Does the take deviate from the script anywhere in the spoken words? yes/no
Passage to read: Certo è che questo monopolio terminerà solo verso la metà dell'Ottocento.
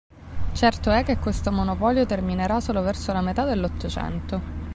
no